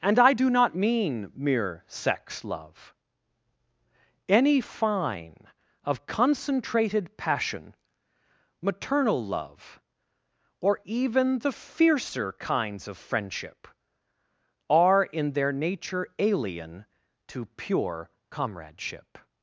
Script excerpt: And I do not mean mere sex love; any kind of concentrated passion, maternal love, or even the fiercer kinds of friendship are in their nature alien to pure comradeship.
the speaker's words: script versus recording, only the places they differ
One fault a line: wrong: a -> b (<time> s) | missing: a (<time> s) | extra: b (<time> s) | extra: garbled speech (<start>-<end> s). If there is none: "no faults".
wrong: kind -> fine (4.6 s)